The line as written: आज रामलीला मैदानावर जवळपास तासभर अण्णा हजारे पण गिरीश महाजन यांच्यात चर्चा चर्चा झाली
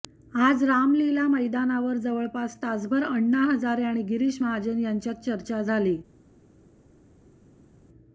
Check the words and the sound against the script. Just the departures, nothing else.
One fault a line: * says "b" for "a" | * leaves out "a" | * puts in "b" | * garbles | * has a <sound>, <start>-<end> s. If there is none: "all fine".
* says "आणि" for "पण"
* leaves out "चर्चा"